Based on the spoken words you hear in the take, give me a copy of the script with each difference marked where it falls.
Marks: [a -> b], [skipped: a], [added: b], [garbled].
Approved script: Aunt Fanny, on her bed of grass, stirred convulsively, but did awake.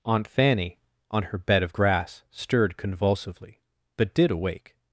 Aunt Fanny, on her bed of grass, stirred convulsively, but did awake.